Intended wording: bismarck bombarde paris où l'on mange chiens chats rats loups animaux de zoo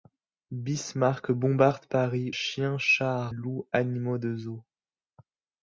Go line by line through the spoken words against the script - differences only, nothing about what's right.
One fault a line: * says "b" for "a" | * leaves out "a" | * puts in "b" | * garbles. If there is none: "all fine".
* leaves out "où l'on mange"
* leaves out "rats"